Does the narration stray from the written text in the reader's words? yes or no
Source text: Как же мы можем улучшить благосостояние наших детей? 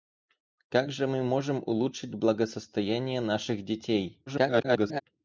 yes